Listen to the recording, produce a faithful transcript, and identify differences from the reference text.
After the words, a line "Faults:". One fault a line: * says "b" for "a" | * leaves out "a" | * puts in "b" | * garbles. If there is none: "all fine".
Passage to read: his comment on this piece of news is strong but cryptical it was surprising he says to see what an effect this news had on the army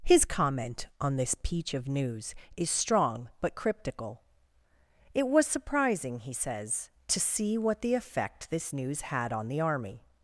his comment on this peach of news is strong but cryptical it was surprising he says to see what the effect this news had on the army
Faults:
* says "peach" for "piece"
* says "the" for "an"